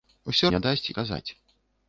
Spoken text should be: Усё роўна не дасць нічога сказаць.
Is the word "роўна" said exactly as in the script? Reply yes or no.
no